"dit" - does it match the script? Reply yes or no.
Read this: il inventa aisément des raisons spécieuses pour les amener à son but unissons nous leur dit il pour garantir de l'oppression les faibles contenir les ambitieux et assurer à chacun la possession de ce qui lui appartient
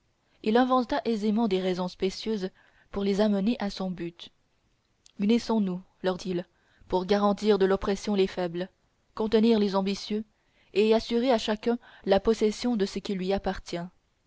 no